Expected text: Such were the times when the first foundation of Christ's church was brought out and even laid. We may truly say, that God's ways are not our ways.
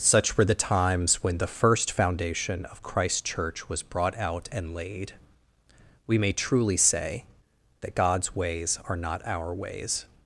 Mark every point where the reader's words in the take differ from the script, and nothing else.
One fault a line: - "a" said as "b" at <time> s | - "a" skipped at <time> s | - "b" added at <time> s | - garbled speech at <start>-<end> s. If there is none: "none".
- "even" skipped at 4.7 s